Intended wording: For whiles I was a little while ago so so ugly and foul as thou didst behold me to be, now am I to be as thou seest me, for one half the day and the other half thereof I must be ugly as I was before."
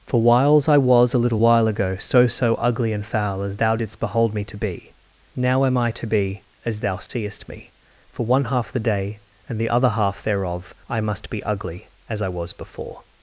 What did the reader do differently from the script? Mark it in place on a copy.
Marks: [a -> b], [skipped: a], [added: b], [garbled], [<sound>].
For whiles I was a little while ago so so ugly and foul as thou didst behold me to be, now am I to be as thou seest [dropout] me, for one half the day and the other half thereof I must be ugly as I was before."